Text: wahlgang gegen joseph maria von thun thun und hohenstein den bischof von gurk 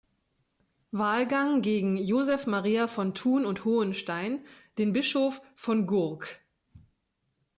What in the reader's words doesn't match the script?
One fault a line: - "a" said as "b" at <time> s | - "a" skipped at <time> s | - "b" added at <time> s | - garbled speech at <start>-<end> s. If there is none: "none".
- "thun" skipped at 3.5 s